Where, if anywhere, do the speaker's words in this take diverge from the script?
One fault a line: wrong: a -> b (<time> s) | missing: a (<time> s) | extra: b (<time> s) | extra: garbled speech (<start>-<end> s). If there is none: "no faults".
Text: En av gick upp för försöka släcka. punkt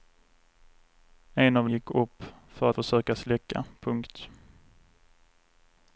no faults